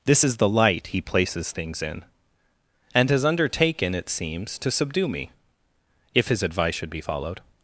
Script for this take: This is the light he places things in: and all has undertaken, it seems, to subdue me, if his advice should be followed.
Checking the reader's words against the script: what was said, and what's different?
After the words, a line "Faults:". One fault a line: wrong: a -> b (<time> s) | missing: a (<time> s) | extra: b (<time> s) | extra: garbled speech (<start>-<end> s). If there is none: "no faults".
This is the light he places things in: and has undertaken, it seems, to subdue me, if his advice should be followed.
Faults:
missing: all (3.1 s)